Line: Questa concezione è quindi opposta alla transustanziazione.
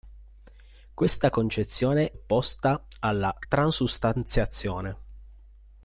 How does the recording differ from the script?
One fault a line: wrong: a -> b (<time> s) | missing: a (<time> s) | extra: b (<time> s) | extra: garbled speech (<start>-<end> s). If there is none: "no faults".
missing: è quindi (2.1 s)